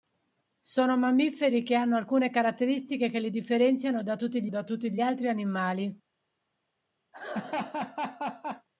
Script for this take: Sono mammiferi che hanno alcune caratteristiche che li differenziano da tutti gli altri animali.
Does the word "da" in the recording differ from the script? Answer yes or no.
no